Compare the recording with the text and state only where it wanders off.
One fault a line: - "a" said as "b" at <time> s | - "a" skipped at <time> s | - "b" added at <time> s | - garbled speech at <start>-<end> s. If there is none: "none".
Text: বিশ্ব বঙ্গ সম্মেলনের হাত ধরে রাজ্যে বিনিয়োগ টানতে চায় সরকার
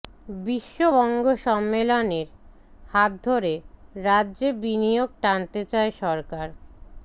none